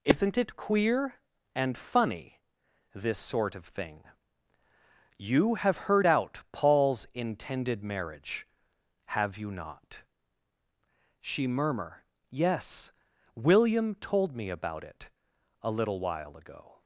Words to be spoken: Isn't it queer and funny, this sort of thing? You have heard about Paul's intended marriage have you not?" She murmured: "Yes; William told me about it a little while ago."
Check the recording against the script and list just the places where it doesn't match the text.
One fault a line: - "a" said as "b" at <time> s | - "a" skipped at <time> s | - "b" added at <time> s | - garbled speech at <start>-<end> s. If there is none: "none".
- "about" said as "out" at 6.0 s
- "murmured" said as "murmur" at 11.5 s